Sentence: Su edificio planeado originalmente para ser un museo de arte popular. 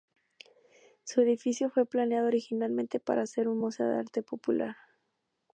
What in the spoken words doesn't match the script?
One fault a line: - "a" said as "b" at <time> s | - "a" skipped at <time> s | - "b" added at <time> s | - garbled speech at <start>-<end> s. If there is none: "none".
- "fue" added at 1.7 s